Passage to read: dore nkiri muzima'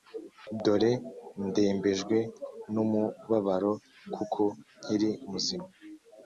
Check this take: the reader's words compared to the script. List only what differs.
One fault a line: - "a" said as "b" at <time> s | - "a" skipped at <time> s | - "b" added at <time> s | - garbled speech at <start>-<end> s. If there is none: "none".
- "ndembejwe n'umubabaro kuko" added at 1.5 s